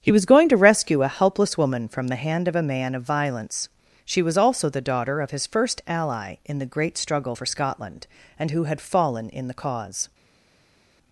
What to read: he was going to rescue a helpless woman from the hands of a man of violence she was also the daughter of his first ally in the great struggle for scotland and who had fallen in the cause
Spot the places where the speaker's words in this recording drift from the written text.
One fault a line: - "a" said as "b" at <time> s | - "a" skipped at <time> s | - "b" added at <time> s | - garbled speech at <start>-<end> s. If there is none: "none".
- "hands" said as "hand" at 2.1 s